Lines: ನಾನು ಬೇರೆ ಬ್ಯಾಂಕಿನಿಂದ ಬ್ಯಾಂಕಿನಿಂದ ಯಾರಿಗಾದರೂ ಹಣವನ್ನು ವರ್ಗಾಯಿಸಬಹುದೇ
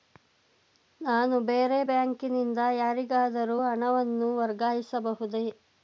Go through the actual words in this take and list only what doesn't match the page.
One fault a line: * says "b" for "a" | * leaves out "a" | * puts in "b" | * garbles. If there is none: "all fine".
* leaves out "ಬ್ಯಾಂಕಿನಿಂದ"